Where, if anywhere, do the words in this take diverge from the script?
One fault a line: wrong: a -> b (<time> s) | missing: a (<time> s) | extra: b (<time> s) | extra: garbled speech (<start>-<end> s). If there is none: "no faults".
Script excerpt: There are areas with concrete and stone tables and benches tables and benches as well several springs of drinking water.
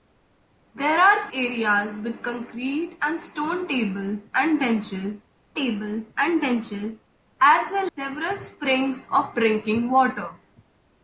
no faults